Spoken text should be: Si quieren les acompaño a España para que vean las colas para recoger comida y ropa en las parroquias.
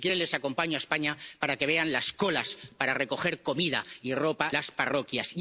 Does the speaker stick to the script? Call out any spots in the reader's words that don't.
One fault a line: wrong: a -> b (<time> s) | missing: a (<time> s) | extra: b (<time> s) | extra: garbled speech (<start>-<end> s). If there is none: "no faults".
missing: en (4.5 s)